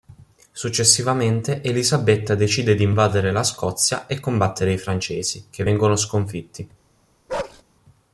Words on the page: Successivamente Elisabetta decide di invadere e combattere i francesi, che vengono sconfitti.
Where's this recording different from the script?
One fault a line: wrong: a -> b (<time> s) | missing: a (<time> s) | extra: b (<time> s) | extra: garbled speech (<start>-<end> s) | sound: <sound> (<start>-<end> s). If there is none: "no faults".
extra: la Scozia (3.3 s)
sound: bark (7.3-7.6 s)